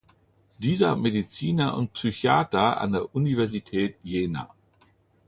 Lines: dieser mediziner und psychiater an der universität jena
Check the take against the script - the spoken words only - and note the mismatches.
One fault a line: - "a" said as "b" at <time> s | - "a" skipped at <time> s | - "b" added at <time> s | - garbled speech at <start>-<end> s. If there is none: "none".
none